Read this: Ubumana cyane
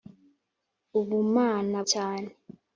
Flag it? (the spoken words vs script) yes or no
no